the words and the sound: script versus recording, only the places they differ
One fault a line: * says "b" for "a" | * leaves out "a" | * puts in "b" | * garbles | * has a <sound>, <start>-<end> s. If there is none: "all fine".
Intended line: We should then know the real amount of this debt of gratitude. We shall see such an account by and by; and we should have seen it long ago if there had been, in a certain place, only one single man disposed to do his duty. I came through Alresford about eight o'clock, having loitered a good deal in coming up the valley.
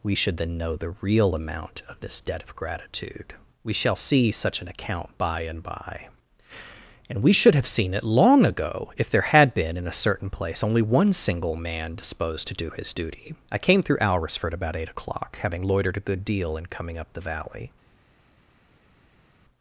all fine